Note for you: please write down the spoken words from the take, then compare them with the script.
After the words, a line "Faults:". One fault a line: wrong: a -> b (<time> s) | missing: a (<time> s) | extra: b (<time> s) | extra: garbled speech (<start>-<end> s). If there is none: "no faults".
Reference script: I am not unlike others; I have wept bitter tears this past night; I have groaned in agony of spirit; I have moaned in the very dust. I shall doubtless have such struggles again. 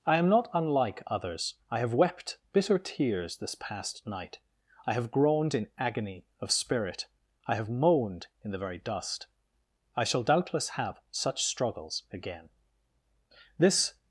I am not unlike others; I have wept bitter tears this past night; I have groaned in agony of spirit; I have moaned in the very dust. I shall doubtless have such struggles again. This
Faults:
extra: This (13.6 s)